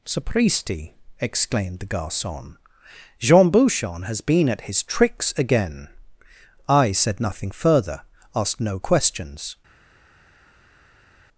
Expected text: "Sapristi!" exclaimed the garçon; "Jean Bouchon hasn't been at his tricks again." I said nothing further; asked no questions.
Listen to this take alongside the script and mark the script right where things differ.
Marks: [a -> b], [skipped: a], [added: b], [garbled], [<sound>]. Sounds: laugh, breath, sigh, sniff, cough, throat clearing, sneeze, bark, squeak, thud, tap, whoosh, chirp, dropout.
"Sapristi!" exclaimed the garçon; "Jean Bouchon [hasn't -> has] been at his tricks again." I said nothing further; asked no questions.